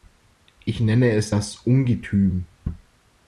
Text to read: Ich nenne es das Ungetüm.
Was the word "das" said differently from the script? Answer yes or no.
no